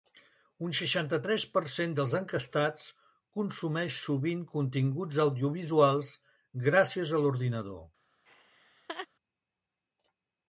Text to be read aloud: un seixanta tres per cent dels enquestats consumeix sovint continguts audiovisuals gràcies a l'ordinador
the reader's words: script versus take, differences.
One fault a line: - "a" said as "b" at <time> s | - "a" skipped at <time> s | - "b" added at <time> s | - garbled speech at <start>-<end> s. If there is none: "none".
none